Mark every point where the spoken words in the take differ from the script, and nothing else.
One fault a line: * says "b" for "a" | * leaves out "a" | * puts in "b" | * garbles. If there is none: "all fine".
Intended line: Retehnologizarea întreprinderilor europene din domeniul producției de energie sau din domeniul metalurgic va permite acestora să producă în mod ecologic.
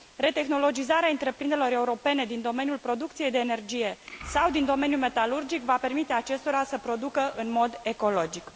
all fine